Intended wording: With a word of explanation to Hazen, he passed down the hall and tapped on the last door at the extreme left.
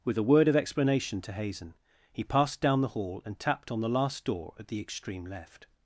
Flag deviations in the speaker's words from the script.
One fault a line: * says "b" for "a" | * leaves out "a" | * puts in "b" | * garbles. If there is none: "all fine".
all fine